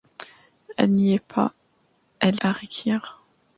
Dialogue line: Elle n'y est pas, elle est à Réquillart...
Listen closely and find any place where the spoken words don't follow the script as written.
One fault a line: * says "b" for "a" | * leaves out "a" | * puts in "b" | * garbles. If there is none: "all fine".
* leaves out "est"